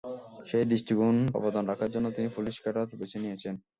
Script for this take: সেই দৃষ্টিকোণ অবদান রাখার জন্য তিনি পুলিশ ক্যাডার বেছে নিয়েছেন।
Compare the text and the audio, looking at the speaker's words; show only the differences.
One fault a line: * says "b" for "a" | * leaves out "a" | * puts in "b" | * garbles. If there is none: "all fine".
all fine